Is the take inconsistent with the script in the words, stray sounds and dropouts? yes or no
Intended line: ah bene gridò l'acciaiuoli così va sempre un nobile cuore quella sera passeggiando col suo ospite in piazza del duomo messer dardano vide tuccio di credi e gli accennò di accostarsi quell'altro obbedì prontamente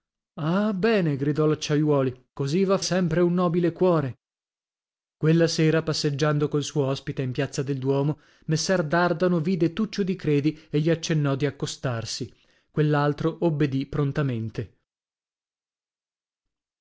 no